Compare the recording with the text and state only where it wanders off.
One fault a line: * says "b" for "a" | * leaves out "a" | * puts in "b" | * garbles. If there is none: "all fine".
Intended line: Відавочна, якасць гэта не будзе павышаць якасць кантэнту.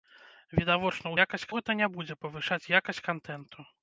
all fine